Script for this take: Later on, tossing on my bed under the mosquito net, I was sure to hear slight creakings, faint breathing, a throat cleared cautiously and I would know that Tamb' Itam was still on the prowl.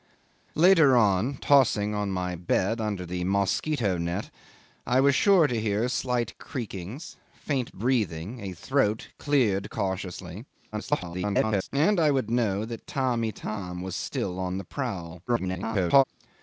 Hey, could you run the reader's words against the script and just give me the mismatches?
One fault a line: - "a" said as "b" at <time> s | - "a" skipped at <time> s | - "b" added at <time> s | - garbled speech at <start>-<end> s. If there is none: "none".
- garbled speech at 10.7-11.7 s
- garbled speech at 15.3-16.0 s